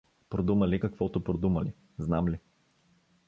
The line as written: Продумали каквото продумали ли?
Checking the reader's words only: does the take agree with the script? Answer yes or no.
no